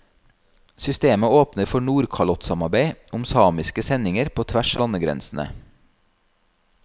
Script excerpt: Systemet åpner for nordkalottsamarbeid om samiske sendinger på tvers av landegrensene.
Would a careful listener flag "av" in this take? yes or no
yes